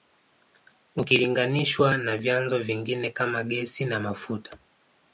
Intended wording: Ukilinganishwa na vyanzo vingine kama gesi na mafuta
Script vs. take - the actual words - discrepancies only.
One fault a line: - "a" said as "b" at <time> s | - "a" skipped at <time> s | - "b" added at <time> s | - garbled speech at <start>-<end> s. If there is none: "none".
none